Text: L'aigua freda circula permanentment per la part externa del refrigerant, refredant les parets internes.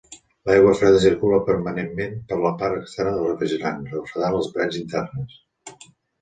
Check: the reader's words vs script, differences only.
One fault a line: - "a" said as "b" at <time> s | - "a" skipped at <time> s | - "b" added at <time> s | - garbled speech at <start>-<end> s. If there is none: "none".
none